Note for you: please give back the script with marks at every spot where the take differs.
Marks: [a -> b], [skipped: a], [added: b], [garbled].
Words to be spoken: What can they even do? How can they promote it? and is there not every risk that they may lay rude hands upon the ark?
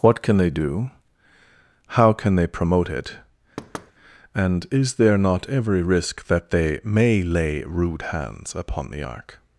What can they [skipped: even] do? How can they promote it? and is there not every risk that they may lay rude hands upon the ark?